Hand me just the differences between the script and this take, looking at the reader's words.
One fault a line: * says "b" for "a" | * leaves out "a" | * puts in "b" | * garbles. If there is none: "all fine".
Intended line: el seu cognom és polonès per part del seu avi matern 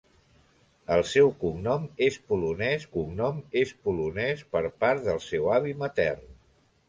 * puts in "cognom és polonès"